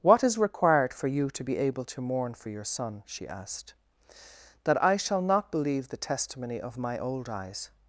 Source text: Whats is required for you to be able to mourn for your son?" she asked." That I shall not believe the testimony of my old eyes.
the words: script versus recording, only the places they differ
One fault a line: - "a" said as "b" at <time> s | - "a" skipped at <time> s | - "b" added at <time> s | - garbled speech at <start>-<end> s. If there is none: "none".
- "Whats" said as "What" at 0.0 s